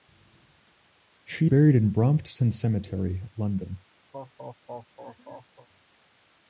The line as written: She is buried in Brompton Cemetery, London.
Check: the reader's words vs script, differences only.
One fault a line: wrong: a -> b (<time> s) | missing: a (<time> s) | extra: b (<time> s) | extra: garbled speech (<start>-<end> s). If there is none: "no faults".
missing: is (1.5 s)